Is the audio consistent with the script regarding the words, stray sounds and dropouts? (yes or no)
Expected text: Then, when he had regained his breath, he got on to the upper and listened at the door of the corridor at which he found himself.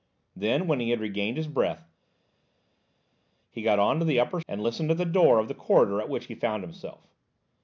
yes